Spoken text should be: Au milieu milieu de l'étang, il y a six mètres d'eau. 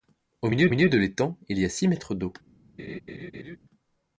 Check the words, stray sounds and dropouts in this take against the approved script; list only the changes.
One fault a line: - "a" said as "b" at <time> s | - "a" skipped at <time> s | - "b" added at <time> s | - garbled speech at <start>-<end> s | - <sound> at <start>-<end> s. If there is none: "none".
- laugh at 2.8-3.6 s